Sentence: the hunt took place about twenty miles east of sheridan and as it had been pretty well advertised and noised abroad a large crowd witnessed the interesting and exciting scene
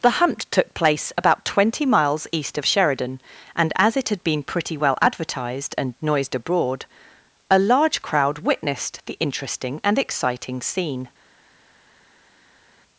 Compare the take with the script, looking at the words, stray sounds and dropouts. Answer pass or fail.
pass